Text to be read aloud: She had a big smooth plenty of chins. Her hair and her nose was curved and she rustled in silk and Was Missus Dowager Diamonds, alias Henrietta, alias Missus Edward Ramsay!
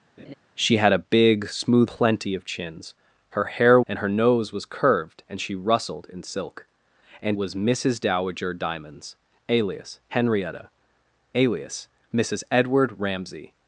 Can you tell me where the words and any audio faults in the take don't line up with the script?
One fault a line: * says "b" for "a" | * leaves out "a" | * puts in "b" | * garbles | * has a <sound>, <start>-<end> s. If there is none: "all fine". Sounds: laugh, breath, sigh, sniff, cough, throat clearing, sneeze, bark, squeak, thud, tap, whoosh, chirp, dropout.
* has a laugh, 0.2-0.3 s